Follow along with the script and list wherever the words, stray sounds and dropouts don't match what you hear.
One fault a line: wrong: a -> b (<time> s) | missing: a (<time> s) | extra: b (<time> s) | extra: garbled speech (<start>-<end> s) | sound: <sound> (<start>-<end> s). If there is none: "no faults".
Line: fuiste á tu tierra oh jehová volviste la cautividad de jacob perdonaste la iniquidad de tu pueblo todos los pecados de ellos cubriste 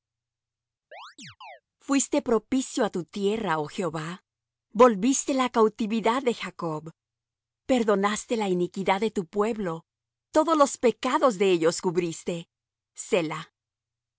sound: chirp (0.9-1.6 s)
extra: propicio (2.3 s)